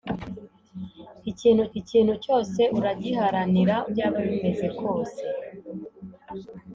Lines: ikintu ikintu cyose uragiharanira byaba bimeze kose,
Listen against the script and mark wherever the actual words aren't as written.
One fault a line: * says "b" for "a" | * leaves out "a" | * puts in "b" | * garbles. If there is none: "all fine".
all fine